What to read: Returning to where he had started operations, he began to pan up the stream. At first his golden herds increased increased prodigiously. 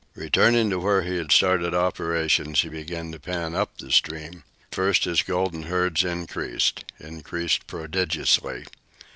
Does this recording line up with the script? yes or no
no